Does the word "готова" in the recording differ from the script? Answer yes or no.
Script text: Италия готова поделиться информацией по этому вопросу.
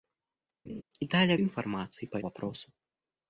yes